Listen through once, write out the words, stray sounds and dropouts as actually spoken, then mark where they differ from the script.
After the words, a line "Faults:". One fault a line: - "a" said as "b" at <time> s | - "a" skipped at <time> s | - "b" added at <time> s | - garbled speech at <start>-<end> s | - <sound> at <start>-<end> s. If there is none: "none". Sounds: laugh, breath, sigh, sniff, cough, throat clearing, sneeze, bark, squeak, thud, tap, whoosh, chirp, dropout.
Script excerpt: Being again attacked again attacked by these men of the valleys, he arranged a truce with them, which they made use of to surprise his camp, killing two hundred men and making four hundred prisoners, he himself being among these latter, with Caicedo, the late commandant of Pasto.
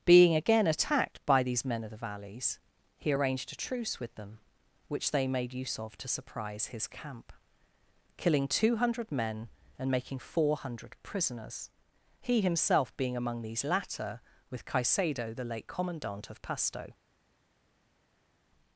Being again attacked by these men of the valleys, he arranged a truce with them, which they made use of to surprise his camp, killing two hundred men and making four hundred prisoners, he himself being among these latter, with Caicedo, the late commandant of Pasto.
Faults:
- "again attacked" skipped at 1.2 s